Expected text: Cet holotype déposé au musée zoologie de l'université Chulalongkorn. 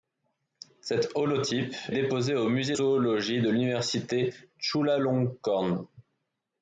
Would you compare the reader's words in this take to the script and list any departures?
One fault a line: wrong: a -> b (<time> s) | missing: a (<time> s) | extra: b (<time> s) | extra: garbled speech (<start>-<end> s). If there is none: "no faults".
no faults